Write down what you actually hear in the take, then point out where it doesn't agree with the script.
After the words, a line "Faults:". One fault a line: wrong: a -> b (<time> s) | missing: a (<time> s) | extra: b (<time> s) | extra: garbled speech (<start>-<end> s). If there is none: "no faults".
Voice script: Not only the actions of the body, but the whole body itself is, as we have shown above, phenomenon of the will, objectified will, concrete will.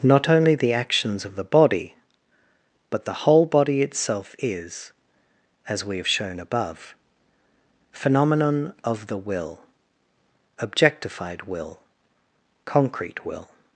Not only the actions of the body, but the whole body itself is, as we have shown above, phenomenon of the will, objectified will, concrete will.
Faults:
no faults